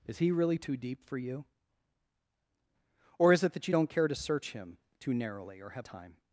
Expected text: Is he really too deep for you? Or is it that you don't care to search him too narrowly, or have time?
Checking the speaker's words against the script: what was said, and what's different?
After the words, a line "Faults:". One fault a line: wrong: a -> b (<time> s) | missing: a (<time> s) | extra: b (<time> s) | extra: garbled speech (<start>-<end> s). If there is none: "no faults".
Is he really too deep for you? Or is it that you don't care to search him too narrowly, or have time?
Faults:
no faults